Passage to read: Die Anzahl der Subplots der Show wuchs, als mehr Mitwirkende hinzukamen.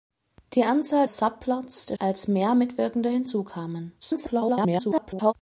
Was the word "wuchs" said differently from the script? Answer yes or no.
yes